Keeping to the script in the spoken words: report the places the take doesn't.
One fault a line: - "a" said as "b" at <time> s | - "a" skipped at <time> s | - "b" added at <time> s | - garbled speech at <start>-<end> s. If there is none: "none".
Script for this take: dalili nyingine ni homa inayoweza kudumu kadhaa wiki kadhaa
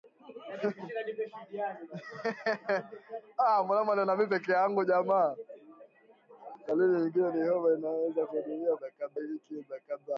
none